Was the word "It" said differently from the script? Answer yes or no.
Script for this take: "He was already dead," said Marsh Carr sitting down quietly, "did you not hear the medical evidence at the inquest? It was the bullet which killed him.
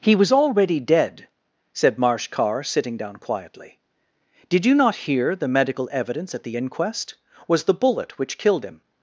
yes